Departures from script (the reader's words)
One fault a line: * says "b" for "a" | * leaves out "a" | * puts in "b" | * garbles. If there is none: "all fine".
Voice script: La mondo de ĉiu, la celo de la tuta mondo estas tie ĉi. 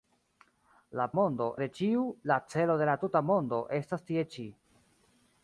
all fine